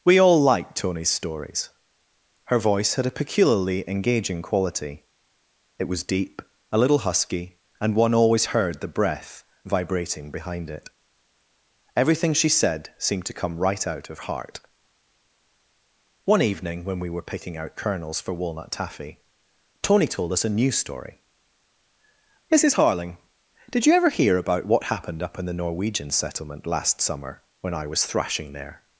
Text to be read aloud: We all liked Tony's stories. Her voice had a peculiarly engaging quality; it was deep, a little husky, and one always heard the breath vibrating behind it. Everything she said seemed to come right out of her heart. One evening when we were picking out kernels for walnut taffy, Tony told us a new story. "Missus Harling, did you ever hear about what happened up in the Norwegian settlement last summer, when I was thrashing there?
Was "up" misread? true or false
false